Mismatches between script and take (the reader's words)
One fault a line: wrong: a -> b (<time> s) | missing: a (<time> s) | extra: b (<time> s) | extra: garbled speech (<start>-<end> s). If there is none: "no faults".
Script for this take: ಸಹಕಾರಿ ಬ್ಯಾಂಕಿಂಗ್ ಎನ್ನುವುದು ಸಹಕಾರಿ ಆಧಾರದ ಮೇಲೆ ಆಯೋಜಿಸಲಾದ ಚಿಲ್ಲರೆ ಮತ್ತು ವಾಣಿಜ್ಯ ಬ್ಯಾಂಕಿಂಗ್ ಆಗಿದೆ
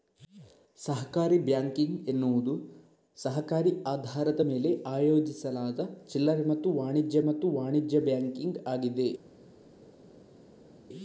extra: ಮತ್ತು ವಾಣಿಜ್ಯ (7.2 s)